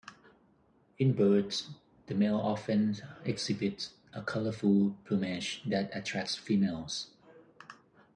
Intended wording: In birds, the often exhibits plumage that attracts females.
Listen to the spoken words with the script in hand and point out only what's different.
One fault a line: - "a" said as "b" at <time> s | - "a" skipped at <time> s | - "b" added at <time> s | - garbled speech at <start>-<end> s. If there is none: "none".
- "male" added at 2.1 s
- "a colorful" added at 4.1 s